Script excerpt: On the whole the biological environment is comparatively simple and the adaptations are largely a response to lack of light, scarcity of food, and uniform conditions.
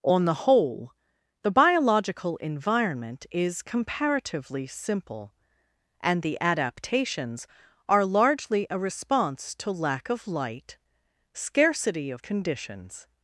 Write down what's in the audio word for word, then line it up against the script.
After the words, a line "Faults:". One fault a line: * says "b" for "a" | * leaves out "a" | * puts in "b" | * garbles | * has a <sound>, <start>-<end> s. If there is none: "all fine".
On the whole the biological environment is comparatively simple and the adaptations are largely a response to lack of light, scarcity of conditions.
Faults:
* leaves out "food and uniform"